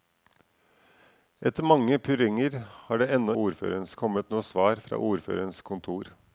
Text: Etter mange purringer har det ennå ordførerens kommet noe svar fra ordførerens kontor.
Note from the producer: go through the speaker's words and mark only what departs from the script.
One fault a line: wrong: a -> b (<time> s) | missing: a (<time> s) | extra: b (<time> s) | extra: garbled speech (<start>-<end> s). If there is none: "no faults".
no faults